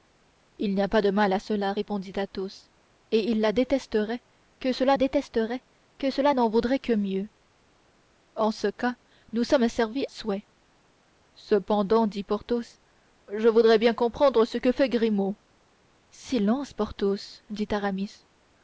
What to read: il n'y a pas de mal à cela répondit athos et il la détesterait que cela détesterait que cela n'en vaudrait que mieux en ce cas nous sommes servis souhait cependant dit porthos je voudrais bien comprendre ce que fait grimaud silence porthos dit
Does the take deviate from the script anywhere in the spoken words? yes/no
no